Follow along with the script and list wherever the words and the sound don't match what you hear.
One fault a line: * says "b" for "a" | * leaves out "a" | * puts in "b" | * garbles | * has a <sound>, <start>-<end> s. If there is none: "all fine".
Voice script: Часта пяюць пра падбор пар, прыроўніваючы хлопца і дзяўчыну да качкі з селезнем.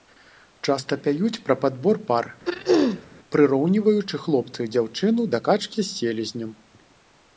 * has a throat clearing, 2.5-3.1 s